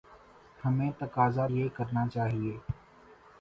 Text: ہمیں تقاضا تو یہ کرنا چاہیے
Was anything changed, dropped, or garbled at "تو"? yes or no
yes